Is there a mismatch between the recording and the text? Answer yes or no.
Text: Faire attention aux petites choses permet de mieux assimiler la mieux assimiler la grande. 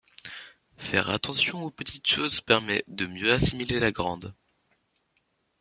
yes